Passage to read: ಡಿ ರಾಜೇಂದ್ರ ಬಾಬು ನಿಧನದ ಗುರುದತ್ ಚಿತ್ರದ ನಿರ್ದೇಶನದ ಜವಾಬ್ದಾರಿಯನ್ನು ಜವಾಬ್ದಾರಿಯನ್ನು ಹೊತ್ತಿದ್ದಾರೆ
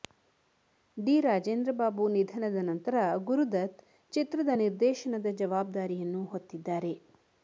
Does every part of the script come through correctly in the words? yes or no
no